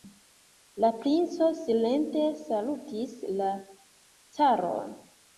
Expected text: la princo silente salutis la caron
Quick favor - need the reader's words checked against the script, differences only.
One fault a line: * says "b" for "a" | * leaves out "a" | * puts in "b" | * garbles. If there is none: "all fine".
all fine